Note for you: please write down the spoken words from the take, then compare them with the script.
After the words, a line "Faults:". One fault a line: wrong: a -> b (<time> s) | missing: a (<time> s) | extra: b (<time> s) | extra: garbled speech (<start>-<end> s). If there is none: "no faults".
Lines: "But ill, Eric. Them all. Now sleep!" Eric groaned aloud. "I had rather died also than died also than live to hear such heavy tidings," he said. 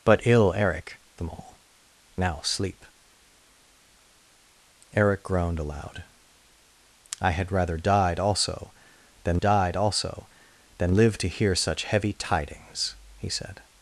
"But ill, Eric. Them all. Now sleep!" Eric groaned aloud. "I had rather died also than died also than live to hear such heavy tidings," he said.
Faults:
no faults